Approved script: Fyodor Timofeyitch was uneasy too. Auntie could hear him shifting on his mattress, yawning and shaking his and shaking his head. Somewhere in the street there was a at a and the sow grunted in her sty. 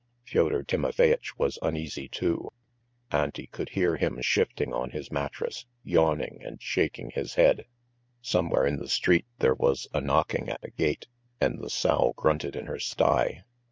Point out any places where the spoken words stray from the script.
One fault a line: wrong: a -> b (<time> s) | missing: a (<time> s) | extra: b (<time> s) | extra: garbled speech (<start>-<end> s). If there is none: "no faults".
missing: and shaking his (7.3 s)
extra: knocking (10.0 s)
extra: gate (10.7 s)